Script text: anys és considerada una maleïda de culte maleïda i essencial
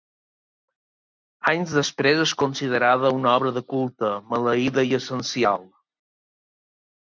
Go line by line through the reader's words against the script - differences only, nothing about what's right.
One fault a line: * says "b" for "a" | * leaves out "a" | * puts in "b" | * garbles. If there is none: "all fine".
* puts in "després"
* says "obra" for "maleïda"